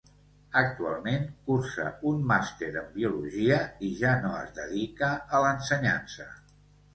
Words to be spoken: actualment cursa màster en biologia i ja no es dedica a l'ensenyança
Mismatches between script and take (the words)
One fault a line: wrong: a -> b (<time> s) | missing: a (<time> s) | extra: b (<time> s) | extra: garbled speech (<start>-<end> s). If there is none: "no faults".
extra: un (2.1 s)